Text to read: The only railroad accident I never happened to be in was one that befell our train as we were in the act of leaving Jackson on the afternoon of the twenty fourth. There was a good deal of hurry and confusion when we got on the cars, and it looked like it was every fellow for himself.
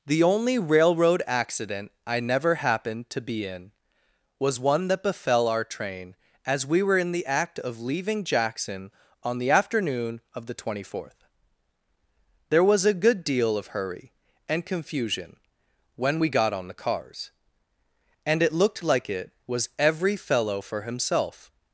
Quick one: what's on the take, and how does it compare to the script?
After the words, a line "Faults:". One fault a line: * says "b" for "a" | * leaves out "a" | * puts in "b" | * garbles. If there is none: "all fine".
The only railroad accident I never happened to be in was one that befell our train as we were in the act of leaving Jackson on the afternoon of the twenty fourth. There was a good deal of hurry and confusion when we got on the cars, and it looked like it was every fellow for himself.
Faults:
all fine